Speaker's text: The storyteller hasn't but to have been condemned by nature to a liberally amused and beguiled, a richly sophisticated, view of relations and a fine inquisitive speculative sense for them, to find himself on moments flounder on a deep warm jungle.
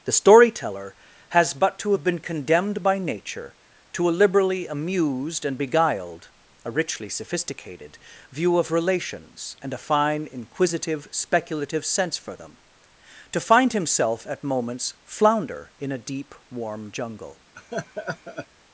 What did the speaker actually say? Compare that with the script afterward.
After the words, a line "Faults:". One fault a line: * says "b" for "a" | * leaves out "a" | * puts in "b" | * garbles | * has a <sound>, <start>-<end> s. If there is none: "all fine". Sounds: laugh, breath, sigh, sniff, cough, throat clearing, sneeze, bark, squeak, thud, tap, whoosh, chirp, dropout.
The storyteller has but to have been condemned by nature to a liberally amused and beguiled, a richly sophisticated, view of relations and a fine inquisitive speculative sense for them, to find himself at moments flounder in a deep warm jungle.
Faults:
* says "has" for "hasn't"
* says "at" for "on"
* says "in" for "on"
* has a laugh, 17.5-18.5 s